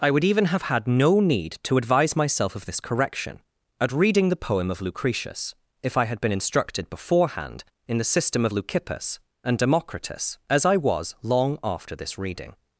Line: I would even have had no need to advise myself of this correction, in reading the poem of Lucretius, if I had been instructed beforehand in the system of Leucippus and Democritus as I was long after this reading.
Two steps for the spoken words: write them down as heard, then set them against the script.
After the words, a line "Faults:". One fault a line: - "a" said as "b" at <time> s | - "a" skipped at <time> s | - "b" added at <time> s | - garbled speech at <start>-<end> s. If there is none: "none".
I would even have had no need to advise myself of this correction, at reading the poem of Lucretius, if I had been instructed beforehand in the system of Leucippus and Democritus as I was long after this reading.
Faults:
- "in" said as "at" at 3.8 s